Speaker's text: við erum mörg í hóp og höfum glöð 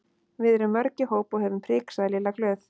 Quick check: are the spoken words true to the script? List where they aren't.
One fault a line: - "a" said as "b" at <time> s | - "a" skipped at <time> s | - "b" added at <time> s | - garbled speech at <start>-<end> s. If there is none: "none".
- "prik sagði lilla" added at 1.7 s